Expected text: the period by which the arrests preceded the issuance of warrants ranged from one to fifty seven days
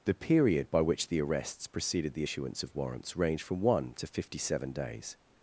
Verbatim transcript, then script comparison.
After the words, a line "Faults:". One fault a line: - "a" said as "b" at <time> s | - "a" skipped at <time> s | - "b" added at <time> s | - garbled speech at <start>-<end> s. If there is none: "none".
the period by which the arrests preceded the issuance of warrants ranged from one to fifty seven days
Faults:
none